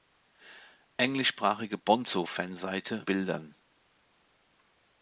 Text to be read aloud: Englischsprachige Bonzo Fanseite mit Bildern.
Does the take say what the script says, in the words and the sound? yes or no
no